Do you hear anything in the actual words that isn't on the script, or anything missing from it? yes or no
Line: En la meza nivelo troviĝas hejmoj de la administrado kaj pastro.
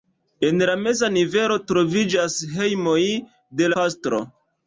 yes